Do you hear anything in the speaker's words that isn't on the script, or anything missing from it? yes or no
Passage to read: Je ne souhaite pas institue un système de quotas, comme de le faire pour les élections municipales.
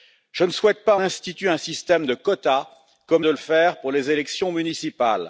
no